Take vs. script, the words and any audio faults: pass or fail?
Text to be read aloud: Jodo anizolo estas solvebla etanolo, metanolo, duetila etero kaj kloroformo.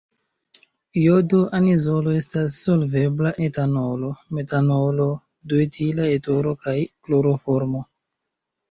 pass